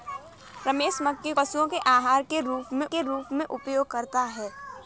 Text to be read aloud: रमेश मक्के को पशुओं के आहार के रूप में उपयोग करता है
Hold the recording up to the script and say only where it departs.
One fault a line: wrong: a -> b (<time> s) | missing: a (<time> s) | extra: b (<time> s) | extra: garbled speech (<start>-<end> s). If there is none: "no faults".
missing: को (1.3 s)
extra: के रूप में (2.9 s)